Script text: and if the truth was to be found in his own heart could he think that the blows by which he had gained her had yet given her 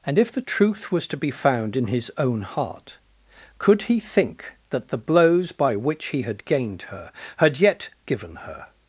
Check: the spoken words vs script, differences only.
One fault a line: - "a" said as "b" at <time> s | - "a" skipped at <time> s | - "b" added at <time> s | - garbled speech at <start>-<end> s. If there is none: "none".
none